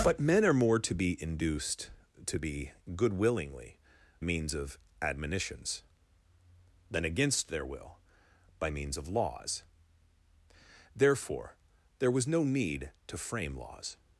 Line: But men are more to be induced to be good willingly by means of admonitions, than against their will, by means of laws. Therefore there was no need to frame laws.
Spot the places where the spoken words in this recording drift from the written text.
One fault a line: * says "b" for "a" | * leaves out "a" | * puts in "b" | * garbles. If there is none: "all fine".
* leaves out "by"